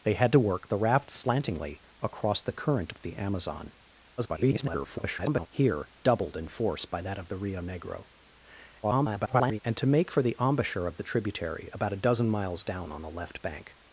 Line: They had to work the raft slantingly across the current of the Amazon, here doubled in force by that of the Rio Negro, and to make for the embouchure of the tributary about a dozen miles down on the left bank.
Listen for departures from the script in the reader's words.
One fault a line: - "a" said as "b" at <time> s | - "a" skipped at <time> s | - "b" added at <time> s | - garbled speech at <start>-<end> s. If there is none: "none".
- garbled speech at 4.2-5.5 s
- garbled speech at 8.8-9.6 s